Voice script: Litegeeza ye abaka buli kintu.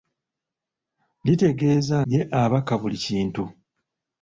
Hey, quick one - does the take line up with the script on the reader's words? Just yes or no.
yes